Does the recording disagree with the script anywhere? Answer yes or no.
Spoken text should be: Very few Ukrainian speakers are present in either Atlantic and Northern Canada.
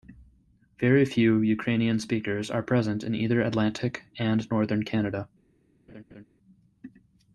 no